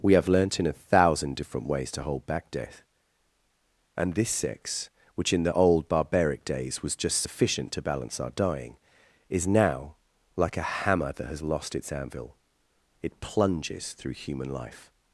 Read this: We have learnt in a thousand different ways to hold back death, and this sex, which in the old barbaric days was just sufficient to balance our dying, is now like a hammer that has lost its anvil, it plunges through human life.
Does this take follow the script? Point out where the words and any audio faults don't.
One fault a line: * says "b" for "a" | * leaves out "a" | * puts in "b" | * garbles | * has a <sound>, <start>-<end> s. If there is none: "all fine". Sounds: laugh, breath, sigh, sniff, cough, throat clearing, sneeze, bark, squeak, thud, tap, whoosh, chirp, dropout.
all fine